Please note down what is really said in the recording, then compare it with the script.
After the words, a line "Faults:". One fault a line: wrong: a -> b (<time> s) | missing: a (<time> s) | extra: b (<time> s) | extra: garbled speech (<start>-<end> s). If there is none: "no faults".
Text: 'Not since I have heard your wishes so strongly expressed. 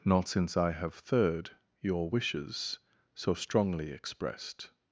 'Not since I have third your wishes so strongly expressed.
Faults:
wrong: heard -> third (0.9 s)